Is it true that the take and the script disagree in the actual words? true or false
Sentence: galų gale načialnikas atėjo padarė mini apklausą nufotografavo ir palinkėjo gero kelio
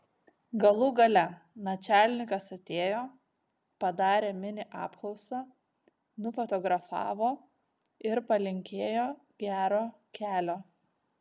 false